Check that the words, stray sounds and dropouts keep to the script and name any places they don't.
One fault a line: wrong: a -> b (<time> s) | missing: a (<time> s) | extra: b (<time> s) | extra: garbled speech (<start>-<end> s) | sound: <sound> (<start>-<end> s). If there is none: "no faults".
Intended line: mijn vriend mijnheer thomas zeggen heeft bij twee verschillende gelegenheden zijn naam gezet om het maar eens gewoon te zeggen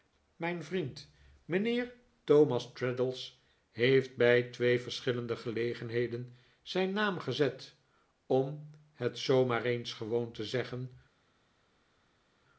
wrong: zeggen -> traddles (2.7 s)
extra: zoo (9.2 s)